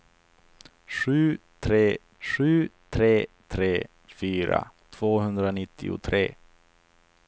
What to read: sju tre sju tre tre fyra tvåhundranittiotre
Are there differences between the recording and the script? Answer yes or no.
no